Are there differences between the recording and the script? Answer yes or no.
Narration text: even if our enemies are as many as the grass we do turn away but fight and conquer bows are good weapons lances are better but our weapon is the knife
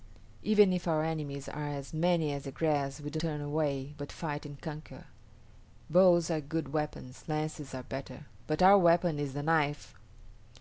no